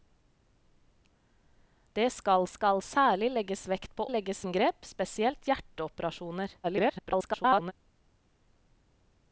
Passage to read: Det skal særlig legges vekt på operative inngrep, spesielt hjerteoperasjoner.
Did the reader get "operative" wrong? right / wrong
wrong